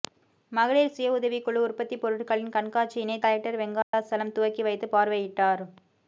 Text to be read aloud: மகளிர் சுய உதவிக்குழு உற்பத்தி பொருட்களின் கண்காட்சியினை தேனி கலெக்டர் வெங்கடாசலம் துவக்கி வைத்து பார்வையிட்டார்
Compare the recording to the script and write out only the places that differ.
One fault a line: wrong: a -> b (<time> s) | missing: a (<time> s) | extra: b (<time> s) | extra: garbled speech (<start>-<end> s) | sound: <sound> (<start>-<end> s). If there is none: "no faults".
missing: தேனி (3.2 s)
sound: dropout (3.8-3.9 s)